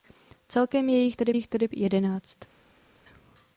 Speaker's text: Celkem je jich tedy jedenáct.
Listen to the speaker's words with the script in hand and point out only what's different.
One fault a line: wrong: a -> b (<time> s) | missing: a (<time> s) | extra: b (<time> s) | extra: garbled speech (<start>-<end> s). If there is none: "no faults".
extra: jich tedy (1.3 s)